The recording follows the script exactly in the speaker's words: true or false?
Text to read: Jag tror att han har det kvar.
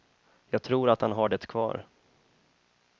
true